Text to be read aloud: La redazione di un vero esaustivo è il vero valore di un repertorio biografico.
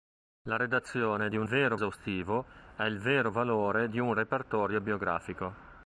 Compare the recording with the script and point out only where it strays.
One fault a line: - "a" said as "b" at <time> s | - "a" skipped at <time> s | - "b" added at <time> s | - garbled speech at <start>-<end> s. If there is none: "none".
none